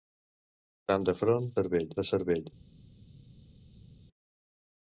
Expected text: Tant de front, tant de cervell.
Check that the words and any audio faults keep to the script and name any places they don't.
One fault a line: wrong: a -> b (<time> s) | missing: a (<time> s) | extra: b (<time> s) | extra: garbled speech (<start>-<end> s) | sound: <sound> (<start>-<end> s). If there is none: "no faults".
wrong: tant -> cervell (1.6 s)